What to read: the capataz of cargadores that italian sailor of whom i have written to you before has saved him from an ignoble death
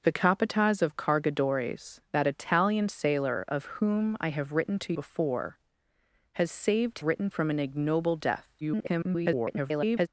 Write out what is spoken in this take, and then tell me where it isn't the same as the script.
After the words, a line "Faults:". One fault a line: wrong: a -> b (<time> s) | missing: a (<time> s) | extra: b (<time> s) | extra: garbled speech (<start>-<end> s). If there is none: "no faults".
the capataz of cargadores that italian sailor of whom i have written to before has saved written from an ignoble death [garbled]
Faults:
missing: you (4.9 s)
wrong: him -> written (7.0 s)
extra: garbled speech (8.6-10.1 s)